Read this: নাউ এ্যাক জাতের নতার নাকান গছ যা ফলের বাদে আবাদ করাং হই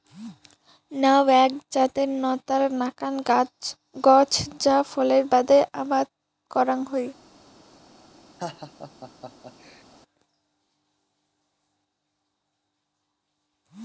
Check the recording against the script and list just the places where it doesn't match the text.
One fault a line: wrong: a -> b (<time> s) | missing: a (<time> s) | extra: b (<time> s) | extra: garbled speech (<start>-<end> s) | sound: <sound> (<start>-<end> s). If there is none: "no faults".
sound: laugh (8.4-9.8 s)